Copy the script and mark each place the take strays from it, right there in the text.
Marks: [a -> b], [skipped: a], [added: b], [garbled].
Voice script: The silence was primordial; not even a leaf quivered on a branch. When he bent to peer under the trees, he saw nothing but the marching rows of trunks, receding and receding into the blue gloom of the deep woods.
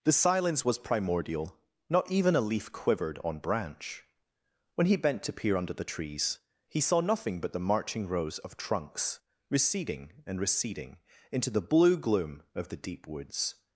The silence was primordial; not even a leaf quivered on [skipped: a] branch. When he bent to peer under the trees, he saw nothing but the marching rows of trunks, receding and receding into the blue gloom of the deep woods.